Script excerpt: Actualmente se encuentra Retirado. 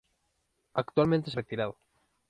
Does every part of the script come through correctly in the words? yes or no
no